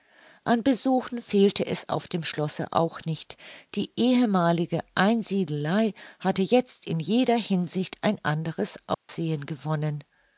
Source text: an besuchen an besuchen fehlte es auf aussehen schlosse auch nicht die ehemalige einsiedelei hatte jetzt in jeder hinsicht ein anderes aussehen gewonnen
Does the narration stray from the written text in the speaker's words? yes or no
yes